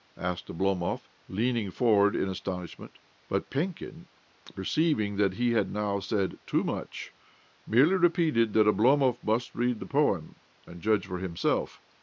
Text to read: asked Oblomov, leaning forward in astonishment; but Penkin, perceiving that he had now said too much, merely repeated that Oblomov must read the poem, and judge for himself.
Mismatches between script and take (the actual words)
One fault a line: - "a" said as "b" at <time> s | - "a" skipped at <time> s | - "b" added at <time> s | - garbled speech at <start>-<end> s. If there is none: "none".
none